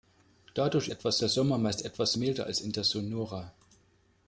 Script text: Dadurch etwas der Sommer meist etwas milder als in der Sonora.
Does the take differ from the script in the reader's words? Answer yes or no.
no